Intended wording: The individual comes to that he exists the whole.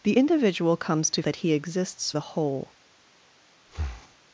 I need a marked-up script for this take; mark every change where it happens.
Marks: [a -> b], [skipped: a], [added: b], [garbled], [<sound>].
The individual comes to that he exists the whole. [breath]